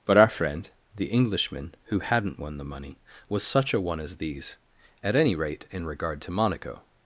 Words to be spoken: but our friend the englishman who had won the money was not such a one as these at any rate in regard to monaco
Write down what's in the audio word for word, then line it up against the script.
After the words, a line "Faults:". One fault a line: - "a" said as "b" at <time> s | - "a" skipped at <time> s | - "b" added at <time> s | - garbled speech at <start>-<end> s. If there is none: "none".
but our friend the englishman who hadn't won the money was such a one as these at any rate in regard to monaco
Faults:
- "had" said as "hadn't" at 2.0 s
- "not" skipped at 3.4 s